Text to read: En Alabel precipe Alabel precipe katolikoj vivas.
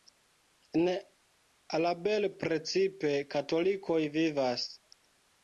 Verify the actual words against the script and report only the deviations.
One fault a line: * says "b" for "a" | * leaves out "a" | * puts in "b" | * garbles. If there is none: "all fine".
* leaves out "Alabel precipe"